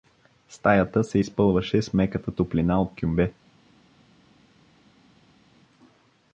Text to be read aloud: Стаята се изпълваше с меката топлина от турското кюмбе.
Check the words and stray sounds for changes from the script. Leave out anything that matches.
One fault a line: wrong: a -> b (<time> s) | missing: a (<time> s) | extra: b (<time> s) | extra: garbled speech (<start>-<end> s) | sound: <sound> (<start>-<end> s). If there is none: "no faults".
missing: турското (3.0 s)